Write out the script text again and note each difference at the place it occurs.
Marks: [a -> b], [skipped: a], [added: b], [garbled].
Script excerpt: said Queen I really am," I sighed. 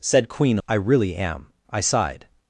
said Queen I really am," I sighed.